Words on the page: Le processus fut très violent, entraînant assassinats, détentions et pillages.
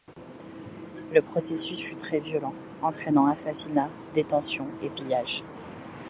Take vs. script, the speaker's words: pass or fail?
pass